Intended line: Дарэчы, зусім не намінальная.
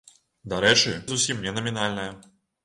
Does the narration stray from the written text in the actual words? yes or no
no